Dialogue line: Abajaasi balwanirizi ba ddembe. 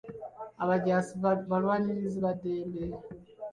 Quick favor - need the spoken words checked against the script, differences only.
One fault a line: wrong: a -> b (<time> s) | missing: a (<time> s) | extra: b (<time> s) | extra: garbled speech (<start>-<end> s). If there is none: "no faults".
no faults